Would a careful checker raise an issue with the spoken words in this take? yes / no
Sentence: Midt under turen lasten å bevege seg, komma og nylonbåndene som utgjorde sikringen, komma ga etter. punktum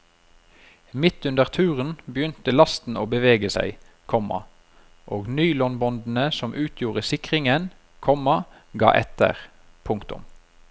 yes